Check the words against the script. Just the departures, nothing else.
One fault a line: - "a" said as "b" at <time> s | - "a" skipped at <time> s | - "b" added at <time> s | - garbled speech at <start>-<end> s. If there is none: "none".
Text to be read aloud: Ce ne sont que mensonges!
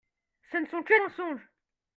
none